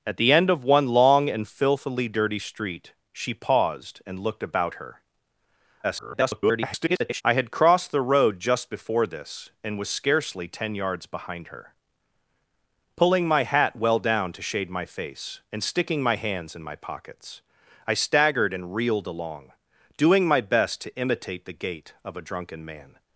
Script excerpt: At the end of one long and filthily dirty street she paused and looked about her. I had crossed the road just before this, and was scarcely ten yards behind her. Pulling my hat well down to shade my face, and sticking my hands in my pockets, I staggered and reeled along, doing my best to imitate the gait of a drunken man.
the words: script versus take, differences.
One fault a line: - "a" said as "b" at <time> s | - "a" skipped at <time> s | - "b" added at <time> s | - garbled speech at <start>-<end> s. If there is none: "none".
- garbled speech at 5.8-7.2 s